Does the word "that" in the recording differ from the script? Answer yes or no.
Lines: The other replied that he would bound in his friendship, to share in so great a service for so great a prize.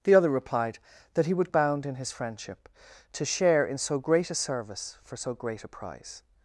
no